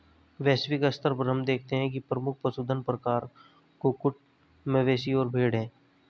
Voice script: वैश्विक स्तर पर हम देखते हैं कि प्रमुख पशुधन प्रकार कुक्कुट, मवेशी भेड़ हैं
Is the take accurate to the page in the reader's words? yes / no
no